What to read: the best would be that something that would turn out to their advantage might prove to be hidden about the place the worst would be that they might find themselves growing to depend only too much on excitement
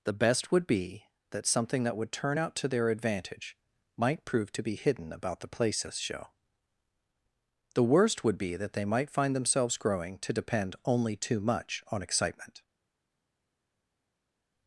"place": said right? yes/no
no